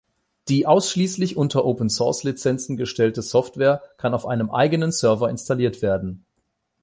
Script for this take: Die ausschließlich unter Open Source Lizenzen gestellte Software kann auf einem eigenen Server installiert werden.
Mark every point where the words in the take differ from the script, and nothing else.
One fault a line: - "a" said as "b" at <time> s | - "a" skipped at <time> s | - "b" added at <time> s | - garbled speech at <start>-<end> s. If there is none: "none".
none